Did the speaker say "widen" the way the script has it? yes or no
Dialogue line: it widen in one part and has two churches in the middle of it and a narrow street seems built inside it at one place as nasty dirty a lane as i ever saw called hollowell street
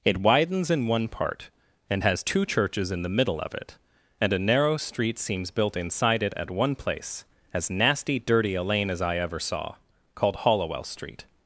no